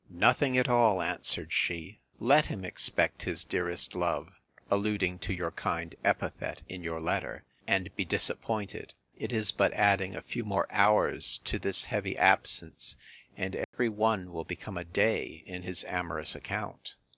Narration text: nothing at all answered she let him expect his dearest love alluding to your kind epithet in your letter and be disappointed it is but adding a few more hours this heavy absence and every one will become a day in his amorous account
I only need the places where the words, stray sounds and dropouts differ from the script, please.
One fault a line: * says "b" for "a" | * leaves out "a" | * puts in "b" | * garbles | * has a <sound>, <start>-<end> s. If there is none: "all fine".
* puts in "to"
* has a dropout, 13.6-13.7 s